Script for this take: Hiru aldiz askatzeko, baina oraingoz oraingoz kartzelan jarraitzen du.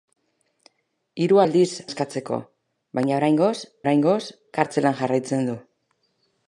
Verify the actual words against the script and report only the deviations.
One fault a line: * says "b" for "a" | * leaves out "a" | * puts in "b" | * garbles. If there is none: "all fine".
all fine